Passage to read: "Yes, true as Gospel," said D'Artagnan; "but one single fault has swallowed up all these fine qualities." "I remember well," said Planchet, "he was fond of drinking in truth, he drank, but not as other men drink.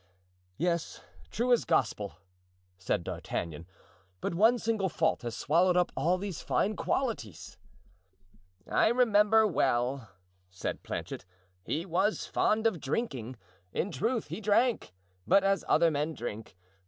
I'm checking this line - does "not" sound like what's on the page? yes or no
no